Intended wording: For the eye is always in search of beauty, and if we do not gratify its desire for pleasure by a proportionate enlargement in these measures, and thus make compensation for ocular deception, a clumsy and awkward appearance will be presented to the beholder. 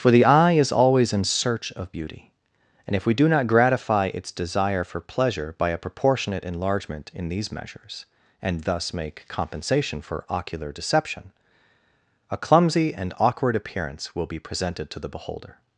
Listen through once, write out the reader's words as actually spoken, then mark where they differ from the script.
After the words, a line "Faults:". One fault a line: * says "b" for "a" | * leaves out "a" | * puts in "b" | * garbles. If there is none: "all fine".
For the eye is always in search of beauty, and if we do not gratify its desire for pleasure by a proportionate enlargement in these measures, and thus make compensation for ocular deception, a clumsy and awkward appearance will be presented to the beholder.
Faults:
all fine